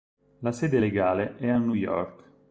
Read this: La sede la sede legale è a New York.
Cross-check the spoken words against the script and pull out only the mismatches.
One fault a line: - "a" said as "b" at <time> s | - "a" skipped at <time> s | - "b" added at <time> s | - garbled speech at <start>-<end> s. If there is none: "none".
- "la sede" skipped at 0.8 s